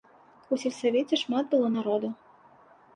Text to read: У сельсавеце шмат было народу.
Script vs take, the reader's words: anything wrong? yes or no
no